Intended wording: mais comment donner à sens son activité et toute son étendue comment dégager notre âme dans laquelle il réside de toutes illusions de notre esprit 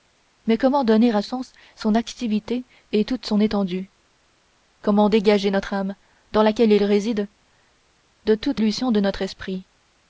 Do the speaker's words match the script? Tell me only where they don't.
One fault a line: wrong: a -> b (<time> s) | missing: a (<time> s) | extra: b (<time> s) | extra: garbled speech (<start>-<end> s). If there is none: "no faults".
no faults